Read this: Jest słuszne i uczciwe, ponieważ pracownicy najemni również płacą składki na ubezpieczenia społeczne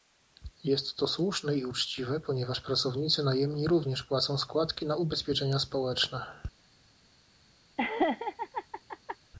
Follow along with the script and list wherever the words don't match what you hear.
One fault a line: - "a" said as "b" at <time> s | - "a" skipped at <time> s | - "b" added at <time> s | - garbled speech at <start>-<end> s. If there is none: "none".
- "to" added at 0.9 s